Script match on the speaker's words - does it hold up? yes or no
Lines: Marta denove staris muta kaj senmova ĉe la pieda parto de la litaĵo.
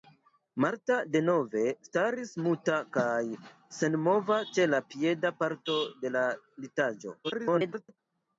no